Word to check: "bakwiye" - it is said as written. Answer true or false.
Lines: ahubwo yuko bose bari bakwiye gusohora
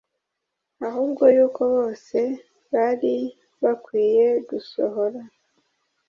true